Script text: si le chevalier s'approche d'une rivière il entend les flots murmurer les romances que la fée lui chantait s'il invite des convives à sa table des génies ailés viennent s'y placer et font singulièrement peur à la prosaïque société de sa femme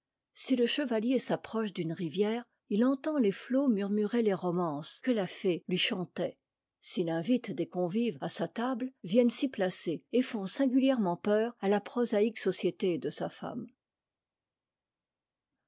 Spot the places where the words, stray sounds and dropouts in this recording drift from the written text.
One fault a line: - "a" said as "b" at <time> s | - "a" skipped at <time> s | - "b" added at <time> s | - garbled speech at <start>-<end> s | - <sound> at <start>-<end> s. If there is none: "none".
- "des génies ailés" skipped at 8.9 s